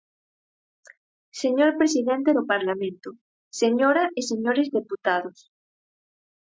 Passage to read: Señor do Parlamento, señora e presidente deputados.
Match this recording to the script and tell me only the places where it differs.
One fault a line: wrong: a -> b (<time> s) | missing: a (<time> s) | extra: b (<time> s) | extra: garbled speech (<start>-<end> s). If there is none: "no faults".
extra: presidente (1.8 s)
wrong: presidente -> señores (4.3 s)